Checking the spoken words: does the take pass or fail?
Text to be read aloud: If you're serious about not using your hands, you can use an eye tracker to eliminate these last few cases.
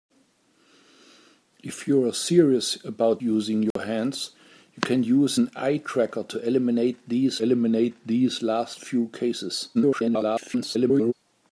fail